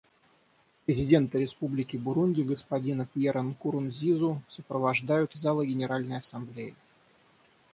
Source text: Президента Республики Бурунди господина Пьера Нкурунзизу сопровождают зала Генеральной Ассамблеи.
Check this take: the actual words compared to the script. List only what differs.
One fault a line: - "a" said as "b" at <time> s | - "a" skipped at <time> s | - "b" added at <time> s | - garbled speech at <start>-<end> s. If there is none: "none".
none